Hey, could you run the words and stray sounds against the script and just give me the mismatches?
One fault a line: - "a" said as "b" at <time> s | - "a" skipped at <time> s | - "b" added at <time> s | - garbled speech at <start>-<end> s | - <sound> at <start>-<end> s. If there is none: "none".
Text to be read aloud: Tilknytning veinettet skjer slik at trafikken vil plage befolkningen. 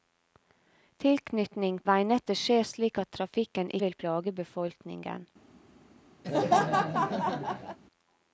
- laugh at 6.2-7.8 s